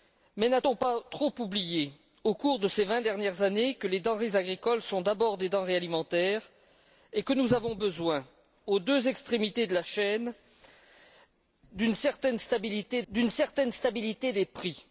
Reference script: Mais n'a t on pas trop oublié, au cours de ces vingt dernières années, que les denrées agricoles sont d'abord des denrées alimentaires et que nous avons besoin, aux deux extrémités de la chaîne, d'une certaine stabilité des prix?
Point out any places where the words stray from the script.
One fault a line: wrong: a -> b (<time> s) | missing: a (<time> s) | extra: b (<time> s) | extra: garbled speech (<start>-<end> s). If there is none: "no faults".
extra: d'une certaine stabilité (13.1 s)